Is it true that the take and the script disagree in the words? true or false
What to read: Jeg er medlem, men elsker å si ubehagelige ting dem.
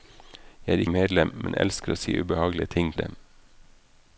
false